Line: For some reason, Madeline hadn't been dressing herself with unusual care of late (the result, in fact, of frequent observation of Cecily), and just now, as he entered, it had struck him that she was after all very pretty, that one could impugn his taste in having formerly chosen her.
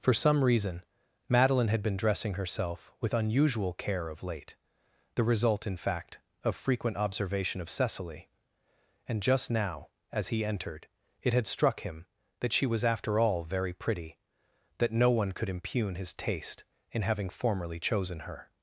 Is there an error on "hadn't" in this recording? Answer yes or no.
yes